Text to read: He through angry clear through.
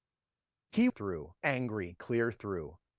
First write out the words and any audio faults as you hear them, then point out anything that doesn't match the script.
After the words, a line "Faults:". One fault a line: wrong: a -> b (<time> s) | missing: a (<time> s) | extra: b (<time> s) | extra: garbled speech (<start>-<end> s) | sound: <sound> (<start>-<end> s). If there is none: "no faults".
He through angry clear through.
Faults:
no faults